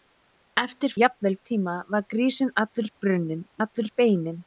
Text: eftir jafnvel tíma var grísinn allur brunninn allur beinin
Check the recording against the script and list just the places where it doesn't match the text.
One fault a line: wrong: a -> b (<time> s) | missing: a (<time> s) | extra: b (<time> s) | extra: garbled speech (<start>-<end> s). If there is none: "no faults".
no faults